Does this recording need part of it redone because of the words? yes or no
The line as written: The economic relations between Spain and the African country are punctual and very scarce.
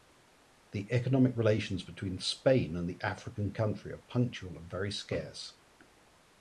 no